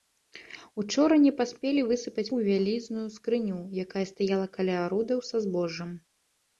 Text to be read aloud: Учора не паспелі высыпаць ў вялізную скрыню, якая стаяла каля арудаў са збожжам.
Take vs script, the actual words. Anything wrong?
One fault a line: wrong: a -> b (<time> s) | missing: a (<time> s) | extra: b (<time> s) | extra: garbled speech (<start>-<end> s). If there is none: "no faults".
no faults